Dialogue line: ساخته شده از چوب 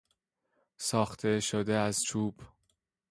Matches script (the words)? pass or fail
pass